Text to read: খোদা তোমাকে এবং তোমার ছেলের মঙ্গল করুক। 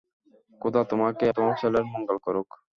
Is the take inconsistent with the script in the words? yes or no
yes